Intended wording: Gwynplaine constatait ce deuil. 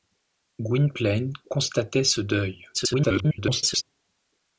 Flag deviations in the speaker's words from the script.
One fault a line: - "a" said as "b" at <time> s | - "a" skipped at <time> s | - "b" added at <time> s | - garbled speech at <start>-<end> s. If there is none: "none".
- garbled speech at 2.7-3.8 s